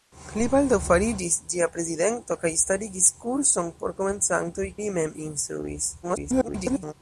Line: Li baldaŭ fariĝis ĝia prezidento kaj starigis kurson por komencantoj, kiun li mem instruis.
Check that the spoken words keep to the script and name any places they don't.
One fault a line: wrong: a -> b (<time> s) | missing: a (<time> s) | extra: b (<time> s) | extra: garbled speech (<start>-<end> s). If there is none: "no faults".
missing: kiun (4.7 s)
extra: garbled speech (6.0-6.9 s)